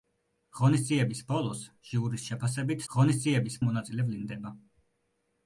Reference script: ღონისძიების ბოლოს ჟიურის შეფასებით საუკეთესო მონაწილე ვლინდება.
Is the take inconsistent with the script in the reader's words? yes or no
yes